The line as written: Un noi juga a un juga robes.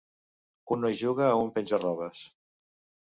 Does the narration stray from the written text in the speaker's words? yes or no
yes